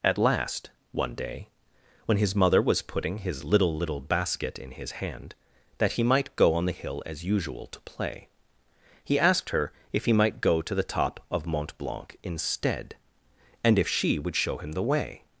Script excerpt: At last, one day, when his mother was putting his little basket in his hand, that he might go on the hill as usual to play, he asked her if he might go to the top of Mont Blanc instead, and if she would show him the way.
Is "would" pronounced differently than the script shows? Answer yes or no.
no